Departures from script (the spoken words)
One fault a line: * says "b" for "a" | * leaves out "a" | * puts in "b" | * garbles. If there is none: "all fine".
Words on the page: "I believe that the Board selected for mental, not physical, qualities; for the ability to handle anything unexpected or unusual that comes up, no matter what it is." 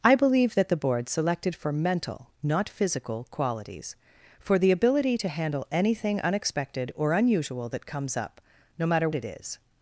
* leaves out "what"